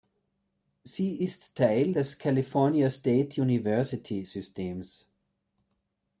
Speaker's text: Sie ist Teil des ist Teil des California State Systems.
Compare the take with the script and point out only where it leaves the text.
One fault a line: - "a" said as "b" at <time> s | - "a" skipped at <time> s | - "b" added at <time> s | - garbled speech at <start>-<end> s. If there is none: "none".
- "ist Teil des" skipped at 2.2 s
- "University" added at 3.4 s